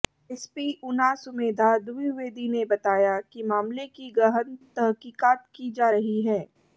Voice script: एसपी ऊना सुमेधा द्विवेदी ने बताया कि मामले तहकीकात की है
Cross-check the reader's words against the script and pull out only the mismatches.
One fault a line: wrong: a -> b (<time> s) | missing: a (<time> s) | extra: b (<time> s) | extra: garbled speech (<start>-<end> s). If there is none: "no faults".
extra: की गहन (3.9 s)
extra: जा रही (5.7 s)